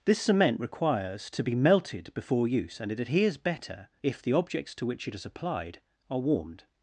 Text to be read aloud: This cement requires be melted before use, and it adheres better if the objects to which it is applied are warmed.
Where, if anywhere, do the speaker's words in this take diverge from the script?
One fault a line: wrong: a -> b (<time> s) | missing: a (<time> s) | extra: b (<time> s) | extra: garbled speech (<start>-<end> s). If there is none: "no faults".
extra: to (1.3 s)